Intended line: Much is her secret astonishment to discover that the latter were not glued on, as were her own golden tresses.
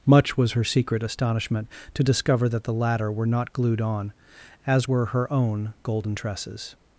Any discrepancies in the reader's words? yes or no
yes